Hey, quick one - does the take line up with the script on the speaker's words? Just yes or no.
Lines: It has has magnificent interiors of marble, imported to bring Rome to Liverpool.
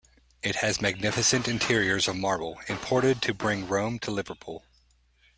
no